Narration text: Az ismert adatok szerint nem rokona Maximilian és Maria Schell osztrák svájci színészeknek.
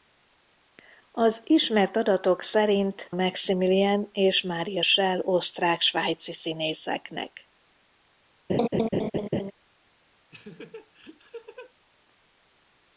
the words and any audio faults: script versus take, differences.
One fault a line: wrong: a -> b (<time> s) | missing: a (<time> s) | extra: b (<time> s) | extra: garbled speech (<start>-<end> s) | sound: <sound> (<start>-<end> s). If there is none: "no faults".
missing: nem rokona (3.1 s)
sound: laugh (8.5-9.5 s)
sound: laugh (10.3-11.7 s)